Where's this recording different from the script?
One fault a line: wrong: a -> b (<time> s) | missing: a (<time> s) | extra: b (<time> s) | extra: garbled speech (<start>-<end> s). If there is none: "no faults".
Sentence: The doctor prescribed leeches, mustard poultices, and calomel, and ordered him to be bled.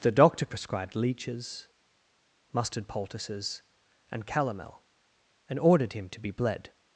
no faults